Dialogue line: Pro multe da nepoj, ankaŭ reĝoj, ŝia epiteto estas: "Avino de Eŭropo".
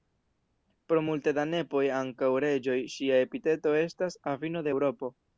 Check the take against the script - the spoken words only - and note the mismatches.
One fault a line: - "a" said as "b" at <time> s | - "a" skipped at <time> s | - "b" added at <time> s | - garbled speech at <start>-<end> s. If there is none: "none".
none